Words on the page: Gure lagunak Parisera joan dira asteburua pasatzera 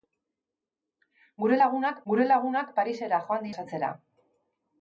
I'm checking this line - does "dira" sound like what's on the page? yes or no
no